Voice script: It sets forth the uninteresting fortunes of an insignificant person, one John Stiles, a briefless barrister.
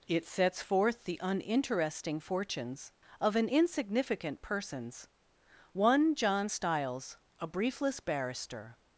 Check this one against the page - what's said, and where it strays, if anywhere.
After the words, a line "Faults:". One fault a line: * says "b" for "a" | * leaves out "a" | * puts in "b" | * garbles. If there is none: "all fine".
It sets forth the uninteresting fortunes of an insignificant persons, one John Stiles, a briefless barrister.
Faults:
* says "persons" for "person"